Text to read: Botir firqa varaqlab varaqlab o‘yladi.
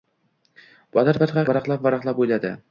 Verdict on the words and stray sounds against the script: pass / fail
pass